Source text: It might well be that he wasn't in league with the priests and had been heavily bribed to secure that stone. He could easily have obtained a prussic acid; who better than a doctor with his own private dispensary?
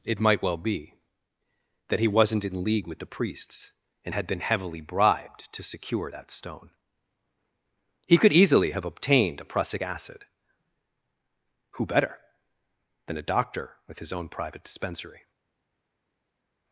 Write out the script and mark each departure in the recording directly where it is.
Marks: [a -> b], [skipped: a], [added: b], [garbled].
It might well be that he wasn't in league with the priests and had been heavily bribed to secure that stone. He could easily have obtained a prussic acid; who better than a doctor with his own private dispensary?